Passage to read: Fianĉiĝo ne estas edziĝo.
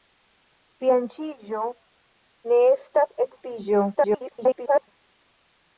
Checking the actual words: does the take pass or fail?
fail